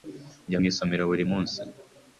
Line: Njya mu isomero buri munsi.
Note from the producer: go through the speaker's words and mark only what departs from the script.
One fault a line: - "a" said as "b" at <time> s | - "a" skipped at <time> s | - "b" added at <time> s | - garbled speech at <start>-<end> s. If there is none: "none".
none